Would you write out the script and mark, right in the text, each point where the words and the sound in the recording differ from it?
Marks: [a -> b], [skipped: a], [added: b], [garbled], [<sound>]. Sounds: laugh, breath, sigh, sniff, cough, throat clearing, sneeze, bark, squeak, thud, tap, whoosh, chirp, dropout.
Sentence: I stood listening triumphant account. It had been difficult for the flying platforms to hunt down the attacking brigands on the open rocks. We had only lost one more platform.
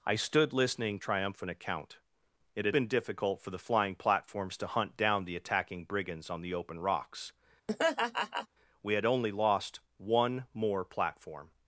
I stood listening triumphant account. It had been difficult for the flying platforms to hunt down the attacking brigands on the open rocks. [laugh] We had only lost one more platform.